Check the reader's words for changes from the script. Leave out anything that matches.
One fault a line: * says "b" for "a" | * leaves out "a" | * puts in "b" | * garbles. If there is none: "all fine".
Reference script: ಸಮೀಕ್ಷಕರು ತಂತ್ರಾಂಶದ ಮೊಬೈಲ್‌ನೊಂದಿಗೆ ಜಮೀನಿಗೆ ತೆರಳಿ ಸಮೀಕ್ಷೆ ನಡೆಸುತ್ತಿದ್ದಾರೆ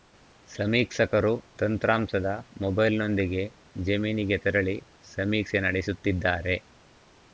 all fine